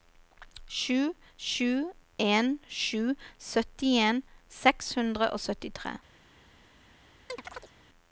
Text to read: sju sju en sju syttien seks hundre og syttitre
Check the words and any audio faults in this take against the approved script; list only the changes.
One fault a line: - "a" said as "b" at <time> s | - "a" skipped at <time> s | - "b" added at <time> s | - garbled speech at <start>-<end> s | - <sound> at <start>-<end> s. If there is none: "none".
- chirp at 7.3-7.7 s